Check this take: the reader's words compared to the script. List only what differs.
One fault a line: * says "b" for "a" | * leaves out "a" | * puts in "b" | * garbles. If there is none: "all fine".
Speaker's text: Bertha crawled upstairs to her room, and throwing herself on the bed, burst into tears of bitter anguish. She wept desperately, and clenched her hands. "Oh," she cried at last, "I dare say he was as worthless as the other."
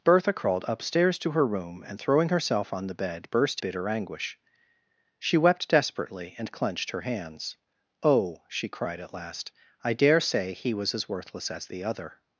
* leaves out "into tears of"